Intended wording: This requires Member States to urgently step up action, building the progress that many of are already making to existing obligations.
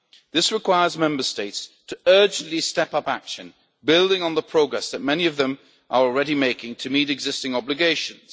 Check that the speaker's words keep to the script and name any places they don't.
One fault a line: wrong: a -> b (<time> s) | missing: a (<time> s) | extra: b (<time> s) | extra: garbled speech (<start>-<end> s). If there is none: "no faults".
extra: on (4.2 s)
extra: them (5.4 s)
extra: meet (6.9 s)